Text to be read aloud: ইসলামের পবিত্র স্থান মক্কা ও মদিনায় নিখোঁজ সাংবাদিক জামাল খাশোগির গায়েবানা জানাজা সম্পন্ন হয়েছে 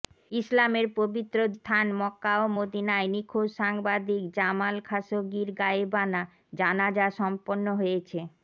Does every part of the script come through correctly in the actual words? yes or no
yes